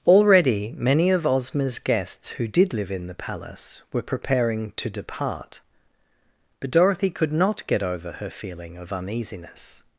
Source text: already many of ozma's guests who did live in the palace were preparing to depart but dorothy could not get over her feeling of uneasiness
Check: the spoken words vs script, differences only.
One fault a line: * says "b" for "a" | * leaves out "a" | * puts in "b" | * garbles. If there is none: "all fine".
all fine